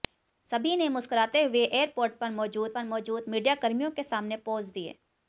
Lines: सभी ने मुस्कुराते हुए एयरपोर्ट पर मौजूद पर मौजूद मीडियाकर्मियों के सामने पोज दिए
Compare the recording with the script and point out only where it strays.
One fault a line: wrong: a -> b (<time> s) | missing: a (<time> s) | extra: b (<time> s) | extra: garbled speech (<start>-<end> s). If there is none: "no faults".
no faults